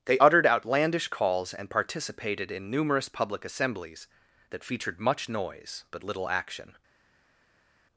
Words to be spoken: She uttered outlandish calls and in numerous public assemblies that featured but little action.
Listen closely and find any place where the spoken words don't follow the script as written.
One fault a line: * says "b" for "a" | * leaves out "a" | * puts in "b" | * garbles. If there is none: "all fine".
* says "They" for "She"
* puts in "participated"
* puts in "much noise"